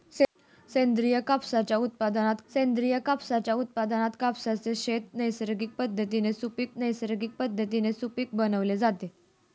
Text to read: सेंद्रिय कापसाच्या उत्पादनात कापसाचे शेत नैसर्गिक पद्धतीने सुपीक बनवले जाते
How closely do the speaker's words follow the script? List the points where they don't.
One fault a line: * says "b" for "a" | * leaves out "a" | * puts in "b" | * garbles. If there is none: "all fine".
* puts in "सेंद्रिय कापसाच्या उत्पादनात"
* puts in "नैसर्गिक पद्धतीने सुपीक"